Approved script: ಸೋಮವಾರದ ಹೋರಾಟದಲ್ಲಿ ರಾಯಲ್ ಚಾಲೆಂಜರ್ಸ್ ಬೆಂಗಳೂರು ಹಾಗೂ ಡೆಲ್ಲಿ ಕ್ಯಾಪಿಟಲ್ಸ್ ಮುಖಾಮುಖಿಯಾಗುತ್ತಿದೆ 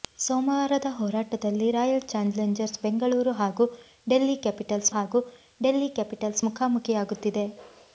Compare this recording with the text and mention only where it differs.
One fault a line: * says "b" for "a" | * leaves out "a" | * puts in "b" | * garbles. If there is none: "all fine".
* puts in "ಹಾಗೂ ಡೆಲ್ಲಿ ಕ್ಯಾಪಿಟಲ್ಸ್"